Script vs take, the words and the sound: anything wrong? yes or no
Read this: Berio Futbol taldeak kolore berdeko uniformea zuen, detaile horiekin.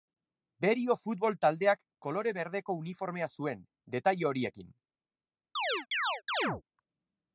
yes